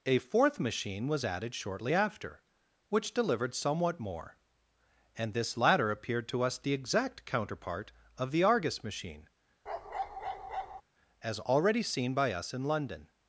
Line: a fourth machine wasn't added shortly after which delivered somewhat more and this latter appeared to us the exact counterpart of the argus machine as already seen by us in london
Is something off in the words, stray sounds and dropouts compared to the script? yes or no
yes